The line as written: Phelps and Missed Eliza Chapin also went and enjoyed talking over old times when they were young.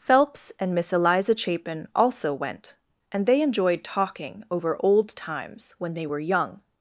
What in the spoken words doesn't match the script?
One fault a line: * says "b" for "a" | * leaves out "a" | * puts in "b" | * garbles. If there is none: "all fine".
* says "Miss" for "Missed"
* puts in "they"